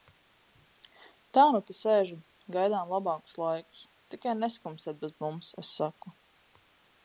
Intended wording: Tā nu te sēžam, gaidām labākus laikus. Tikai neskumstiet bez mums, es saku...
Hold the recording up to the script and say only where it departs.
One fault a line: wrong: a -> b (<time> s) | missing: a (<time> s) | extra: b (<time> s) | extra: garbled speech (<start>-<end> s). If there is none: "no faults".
no faults